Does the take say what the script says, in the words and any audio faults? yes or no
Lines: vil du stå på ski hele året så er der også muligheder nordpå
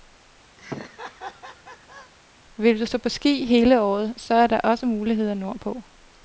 no